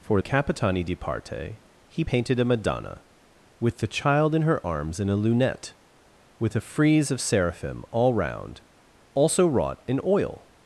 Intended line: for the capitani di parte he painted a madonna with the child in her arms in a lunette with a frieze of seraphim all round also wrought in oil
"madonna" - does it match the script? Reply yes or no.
yes